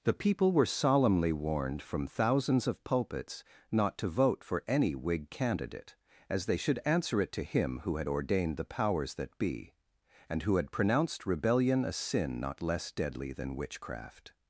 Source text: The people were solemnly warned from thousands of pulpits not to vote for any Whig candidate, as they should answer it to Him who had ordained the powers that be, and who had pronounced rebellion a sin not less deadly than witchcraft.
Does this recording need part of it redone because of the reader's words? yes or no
no